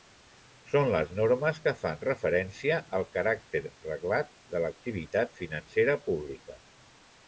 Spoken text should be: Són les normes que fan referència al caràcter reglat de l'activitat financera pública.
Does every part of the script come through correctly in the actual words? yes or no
yes